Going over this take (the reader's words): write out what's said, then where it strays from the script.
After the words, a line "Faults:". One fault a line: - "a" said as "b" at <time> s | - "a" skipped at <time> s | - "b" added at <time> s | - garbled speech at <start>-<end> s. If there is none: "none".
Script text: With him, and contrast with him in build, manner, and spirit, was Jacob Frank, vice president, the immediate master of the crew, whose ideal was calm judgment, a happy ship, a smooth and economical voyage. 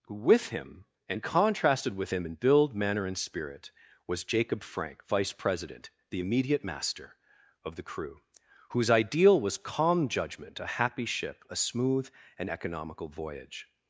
With him, and contrasted with him in build, manner, and spirit, was Jacob Frank, vice president, the immediate master of the crew, whose ideal was calm judgment, a happy ship, a smooth and economical voyage.
Faults:
- "contrast" said as "contrasted" at 1.2 s